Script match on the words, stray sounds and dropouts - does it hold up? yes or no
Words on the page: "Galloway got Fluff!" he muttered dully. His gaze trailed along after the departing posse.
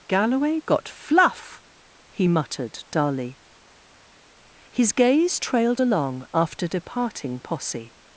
no